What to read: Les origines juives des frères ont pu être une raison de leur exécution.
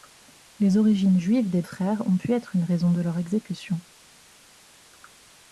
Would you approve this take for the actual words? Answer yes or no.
yes